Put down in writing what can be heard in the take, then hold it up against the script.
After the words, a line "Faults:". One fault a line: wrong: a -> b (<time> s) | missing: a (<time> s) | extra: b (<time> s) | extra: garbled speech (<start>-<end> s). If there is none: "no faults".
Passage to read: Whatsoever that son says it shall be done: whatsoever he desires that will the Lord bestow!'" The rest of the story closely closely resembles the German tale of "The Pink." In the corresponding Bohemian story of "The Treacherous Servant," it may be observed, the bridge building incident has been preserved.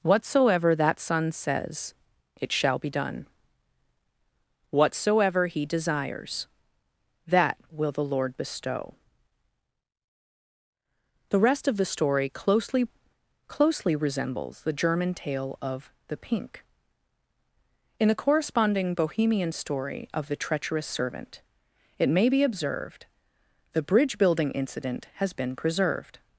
Whatsoever that son says it shall be done: whatsoever he desires that will the Lord bestow!'" The rest of the story closely closely resembles the German tale of "The Pink." In the corresponding Bohemian story of "The Treacherous Servant," it may be observed, the bridge building incident has been preserved.
Faults:
no faults